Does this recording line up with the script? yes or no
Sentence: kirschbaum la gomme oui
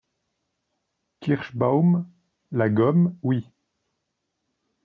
yes